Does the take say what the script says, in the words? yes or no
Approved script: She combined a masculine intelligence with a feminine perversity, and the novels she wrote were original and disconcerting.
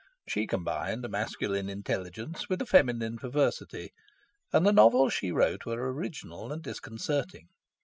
yes